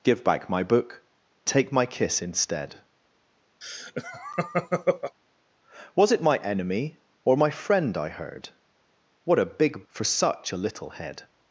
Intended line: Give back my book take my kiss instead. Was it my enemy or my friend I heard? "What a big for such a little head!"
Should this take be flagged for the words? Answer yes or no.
no